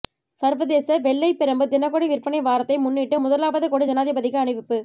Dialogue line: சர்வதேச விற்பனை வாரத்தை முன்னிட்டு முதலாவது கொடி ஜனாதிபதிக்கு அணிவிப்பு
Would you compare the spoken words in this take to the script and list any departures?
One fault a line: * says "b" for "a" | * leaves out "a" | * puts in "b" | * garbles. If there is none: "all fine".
* puts in "வெள்ளைப் பிரம்பு தினகொடி"